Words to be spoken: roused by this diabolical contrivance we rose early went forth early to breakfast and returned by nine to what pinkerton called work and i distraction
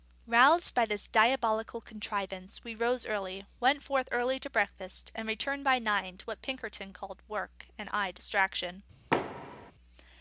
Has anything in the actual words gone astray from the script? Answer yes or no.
no